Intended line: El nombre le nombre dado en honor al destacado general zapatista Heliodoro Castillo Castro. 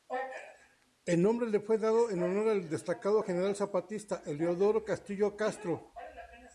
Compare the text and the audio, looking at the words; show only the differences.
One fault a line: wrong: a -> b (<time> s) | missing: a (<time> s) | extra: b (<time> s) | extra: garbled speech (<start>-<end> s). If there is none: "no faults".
wrong: nombre -> fue (1.6 s)